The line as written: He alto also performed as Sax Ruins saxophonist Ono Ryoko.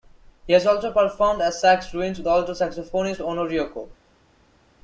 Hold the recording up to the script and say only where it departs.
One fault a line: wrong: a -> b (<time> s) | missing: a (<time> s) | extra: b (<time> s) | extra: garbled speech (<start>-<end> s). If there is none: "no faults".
wrong: alto -> has (0.5 s)
extra: with alto (2.2 s)